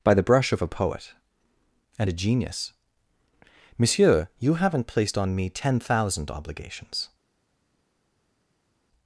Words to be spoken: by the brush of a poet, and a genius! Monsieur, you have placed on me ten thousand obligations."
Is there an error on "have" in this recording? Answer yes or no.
yes